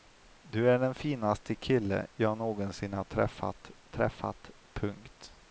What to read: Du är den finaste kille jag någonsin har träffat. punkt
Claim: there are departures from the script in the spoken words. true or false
true